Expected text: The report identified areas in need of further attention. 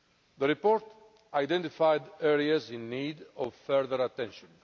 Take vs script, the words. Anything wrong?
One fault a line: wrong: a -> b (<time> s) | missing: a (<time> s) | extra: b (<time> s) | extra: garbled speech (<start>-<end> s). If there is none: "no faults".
no faults